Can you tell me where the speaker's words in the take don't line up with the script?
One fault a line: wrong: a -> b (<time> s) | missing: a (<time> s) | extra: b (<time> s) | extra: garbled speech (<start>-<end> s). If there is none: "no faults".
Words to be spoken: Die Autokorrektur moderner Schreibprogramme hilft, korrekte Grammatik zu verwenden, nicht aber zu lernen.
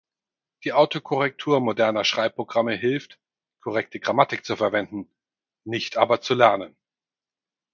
no faults